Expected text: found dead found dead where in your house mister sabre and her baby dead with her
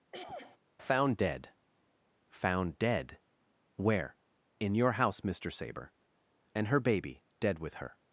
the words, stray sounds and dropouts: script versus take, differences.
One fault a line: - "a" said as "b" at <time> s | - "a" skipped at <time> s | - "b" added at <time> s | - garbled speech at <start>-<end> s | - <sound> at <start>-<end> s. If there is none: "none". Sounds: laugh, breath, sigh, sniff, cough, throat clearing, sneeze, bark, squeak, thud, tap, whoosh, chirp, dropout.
- throat clearing at 0.1-0.6 s